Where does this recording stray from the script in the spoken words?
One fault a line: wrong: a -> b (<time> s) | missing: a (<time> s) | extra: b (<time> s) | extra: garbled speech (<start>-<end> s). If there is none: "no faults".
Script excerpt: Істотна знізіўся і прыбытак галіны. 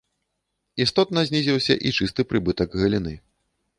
extra: чысты (2.0 s)